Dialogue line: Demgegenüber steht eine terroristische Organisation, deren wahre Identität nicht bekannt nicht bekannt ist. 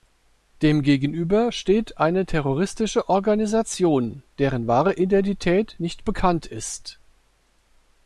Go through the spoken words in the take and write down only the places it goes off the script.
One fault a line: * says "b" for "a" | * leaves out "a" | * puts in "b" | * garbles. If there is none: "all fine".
* leaves out "nicht bekannt"